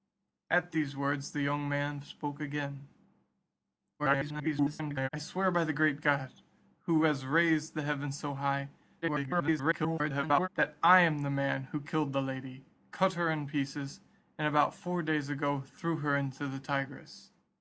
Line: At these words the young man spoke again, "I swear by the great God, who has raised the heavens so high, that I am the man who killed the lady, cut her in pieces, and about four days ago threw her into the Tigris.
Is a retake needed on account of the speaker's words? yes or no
yes